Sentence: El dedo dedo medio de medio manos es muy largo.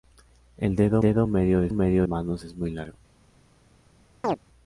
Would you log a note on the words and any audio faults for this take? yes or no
yes